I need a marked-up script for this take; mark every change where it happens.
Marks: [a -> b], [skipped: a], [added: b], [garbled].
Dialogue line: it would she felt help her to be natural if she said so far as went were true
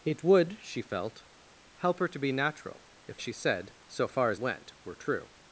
it would she felt help her to be natural if she said so far as went were true